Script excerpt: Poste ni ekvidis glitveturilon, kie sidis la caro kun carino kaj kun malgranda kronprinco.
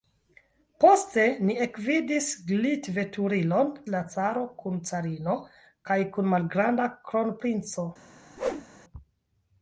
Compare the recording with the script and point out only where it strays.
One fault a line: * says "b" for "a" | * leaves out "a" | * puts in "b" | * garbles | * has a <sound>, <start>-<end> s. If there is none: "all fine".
* leaves out "kie sidis"
* has a whoosh, 8.4-8.7 s